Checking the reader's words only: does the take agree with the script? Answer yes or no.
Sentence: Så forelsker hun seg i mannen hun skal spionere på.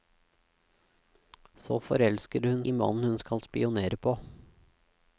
no